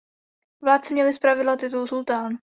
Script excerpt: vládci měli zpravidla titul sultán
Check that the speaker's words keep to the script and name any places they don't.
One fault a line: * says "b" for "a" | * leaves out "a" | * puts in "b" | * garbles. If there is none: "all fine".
all fine